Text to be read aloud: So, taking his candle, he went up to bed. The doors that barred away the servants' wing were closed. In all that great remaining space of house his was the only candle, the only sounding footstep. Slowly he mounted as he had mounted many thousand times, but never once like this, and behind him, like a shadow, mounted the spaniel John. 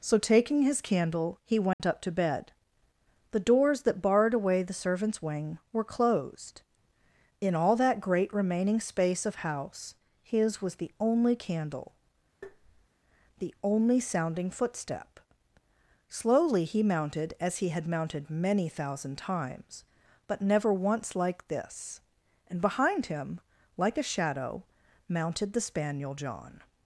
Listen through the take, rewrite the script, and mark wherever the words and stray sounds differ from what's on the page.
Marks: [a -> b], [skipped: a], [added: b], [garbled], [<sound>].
So, taking his candle, he went [dropout] up to bed. The doors that barred away the servants' wing were closed. In all that great remaining space of house his was the only candle, [tap] the only sounding footstep. Slowly he mounted as he had mounted many thousand times, but never once like this, and behind him, like a shadow, mounted the spaniel John.